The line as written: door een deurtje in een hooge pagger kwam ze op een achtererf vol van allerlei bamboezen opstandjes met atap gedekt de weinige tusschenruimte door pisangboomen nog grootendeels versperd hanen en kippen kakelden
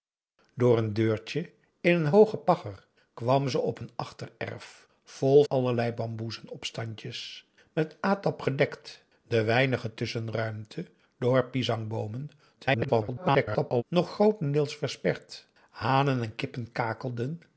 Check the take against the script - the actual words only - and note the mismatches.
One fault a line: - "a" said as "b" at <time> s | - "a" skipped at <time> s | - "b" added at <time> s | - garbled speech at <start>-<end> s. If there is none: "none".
- "van" skipped at 5.4 s
- garbled speech at 12.6-13.8 s